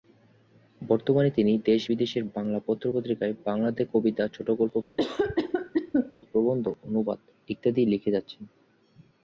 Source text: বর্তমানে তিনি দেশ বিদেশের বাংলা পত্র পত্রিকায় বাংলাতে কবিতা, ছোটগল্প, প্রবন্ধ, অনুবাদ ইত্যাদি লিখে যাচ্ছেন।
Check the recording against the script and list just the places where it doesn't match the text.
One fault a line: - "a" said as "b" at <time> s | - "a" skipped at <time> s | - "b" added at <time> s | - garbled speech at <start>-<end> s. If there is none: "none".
none